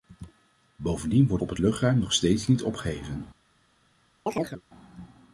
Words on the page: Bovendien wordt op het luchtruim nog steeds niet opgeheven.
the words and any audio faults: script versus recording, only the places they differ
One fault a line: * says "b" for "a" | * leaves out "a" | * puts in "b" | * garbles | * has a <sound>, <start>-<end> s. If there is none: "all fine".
* has a chirp, 4.3-4.6 s